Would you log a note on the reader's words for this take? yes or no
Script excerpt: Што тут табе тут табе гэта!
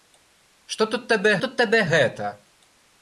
no